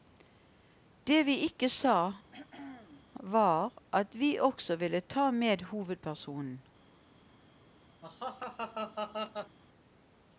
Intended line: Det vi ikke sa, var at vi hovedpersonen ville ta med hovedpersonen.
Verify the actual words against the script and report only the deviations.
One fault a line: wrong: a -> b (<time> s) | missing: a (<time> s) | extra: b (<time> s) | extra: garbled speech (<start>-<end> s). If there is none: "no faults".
wrong: hovedpersonen -> også (4.4 s)